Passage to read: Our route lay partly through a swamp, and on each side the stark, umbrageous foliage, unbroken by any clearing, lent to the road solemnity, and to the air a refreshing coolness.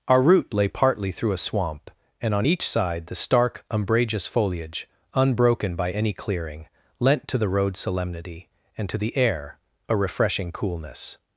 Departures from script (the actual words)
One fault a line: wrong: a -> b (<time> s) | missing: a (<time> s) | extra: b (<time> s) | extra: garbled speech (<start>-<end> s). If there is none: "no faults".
no faults